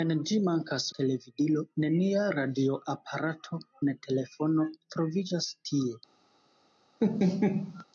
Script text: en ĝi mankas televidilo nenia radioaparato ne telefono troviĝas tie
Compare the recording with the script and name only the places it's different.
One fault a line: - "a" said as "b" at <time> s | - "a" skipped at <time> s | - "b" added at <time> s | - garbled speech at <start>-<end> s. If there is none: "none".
none